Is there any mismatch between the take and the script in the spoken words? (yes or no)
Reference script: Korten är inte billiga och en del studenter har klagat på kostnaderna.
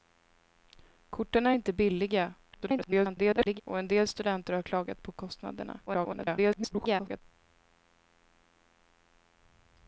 yes